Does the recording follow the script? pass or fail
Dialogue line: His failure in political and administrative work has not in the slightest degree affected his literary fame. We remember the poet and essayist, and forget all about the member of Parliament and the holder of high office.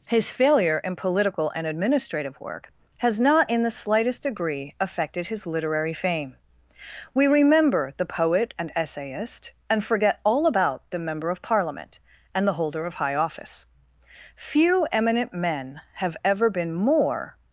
fail